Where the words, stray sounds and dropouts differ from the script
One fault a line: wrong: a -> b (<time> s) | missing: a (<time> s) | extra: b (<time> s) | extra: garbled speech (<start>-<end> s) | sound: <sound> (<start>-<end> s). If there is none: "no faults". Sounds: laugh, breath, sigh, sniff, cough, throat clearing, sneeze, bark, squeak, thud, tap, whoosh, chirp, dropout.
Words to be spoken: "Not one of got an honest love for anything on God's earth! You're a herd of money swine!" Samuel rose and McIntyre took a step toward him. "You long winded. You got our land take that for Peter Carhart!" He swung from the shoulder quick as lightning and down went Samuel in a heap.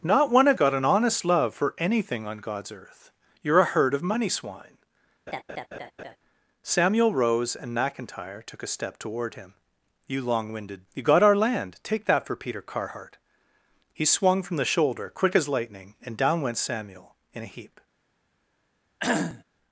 sound: laugh (5.3-6.2 s)
sound: cough (19.0-19.4 s)